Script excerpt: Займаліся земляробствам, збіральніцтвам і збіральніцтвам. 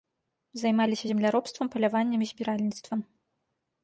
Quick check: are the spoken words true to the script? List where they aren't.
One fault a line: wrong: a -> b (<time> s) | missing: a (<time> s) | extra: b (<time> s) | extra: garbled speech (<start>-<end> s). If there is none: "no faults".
wrong: збіральніцтвам -> паляваннем (1.7 s)